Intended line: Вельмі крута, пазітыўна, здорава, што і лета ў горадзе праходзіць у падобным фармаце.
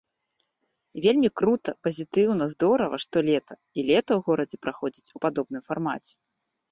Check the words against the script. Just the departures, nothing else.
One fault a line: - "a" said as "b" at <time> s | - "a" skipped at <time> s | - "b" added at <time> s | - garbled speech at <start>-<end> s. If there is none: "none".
- "лета" added at 3.3 s